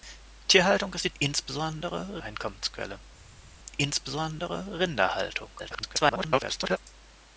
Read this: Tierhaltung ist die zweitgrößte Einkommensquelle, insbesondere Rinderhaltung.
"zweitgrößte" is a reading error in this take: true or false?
true